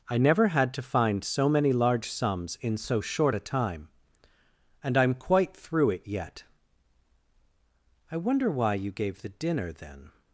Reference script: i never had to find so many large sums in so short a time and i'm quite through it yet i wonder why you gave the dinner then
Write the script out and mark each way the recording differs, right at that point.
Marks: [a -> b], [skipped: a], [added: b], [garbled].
i never had to find so many large sums in so short a time and i'm quite through it yet i wonder why you gave the dinner then